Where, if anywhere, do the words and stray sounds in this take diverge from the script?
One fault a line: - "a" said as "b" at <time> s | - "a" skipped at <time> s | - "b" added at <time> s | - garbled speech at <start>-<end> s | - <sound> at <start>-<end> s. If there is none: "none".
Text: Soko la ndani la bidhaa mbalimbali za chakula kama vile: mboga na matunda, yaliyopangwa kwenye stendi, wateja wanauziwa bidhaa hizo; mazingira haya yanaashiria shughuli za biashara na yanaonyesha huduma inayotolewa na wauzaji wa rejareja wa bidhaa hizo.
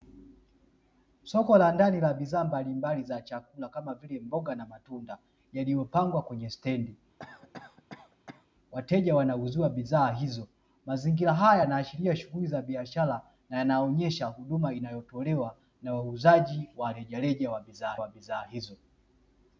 - cough at 7.2-8.5 s
- "wa bidhaa" added at 18.0 s